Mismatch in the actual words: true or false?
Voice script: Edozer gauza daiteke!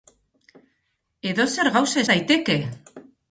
false